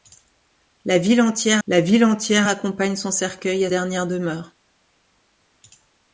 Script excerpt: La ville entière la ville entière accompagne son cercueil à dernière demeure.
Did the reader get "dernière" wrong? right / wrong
right